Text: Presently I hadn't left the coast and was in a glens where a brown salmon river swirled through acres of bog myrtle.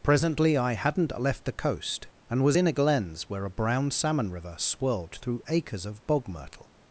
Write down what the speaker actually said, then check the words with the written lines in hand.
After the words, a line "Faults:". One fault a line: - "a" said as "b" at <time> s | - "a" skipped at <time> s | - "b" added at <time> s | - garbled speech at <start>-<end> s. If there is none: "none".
Presently I hadn't left the coast and was in a glens where a brown salmon river swirled through acres of bog myrtle.
Faults:
none